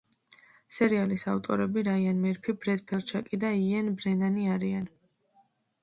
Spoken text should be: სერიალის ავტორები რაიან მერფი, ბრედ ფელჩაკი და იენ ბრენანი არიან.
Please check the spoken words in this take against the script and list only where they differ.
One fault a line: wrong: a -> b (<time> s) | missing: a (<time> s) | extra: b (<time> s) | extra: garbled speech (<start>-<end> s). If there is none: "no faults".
no faults